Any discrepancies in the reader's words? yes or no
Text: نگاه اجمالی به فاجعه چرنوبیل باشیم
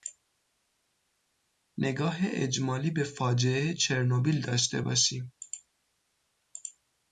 yes